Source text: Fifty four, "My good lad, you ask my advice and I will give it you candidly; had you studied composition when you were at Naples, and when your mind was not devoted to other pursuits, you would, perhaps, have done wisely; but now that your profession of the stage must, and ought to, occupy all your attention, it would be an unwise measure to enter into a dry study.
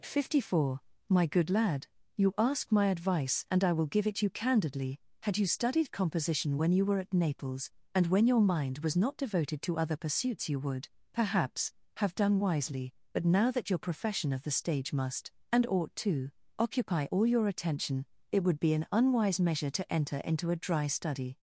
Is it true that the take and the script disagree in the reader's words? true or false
false